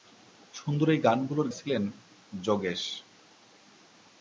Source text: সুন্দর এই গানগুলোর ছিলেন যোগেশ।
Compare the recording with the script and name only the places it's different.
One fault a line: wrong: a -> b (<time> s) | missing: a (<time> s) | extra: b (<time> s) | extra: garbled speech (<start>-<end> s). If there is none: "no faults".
no faults